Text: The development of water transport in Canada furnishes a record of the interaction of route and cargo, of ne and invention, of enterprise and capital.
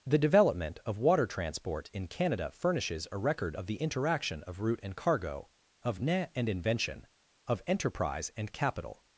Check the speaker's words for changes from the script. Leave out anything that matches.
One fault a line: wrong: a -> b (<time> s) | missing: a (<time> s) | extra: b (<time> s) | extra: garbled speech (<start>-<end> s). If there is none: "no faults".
no faults